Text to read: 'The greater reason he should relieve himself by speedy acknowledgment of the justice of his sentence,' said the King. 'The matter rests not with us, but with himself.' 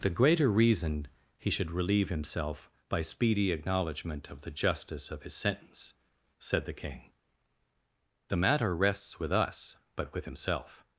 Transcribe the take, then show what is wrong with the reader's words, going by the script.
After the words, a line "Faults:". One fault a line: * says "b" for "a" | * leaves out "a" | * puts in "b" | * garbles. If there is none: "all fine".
'The greater reason he should relieve himself by speedy acknowledgment of the justice of his sentence,' said the King. 'The matter rests with us, but with himself.'
Faults:
* leaves out "not"